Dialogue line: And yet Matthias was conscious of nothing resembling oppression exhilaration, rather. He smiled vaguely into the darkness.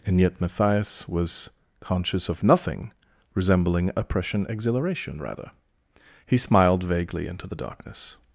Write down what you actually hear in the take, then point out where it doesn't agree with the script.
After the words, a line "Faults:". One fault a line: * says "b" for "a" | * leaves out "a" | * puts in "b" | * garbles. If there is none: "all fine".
And yet Matthias was conscious of nothing resembling oppression exhilaration, rather. He smiled vaguely into the darkness.
Faults:
all fine